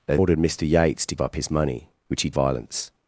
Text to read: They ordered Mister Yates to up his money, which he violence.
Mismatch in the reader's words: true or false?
false